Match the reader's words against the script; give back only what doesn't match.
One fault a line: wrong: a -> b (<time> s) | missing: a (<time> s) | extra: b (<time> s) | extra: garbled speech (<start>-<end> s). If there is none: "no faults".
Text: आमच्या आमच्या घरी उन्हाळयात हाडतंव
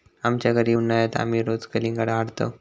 missing: आमच्या (0.5 s)
extra: आमी रोज कलिंगडा (1.2 s)